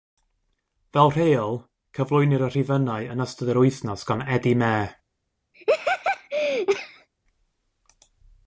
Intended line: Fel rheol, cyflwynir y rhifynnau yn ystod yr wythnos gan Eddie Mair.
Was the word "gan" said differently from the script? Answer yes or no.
no